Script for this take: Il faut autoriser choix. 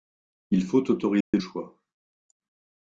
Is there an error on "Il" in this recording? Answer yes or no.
no